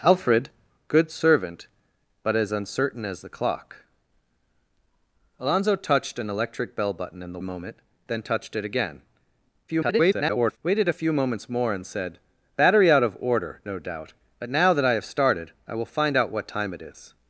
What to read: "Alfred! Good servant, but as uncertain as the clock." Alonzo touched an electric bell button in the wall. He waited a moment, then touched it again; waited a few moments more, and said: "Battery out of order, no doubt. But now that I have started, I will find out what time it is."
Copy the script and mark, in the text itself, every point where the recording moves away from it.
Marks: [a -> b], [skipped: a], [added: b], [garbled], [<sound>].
"Alfred! Good servant, but as uncertain as the clock." Alonzo touched an electric bell button in the [skipped: wall. He waited] a moment, then touched it again; [garbled] waited a few moments more, and said: "Battery out of order, no doubt. But now that I have started, I will find out what time it is."